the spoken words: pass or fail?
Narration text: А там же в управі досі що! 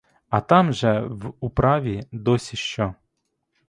pass